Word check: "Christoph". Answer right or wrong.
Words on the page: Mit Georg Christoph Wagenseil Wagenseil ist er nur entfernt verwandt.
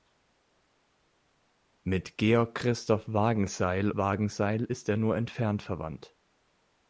right